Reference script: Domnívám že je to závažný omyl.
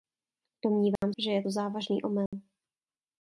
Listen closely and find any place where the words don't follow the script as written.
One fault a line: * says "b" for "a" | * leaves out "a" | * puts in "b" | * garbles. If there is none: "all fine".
all fine